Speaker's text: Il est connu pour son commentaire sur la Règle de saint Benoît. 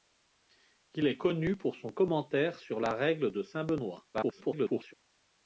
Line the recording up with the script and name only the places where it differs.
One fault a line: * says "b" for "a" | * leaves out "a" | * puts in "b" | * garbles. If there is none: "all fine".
* garbles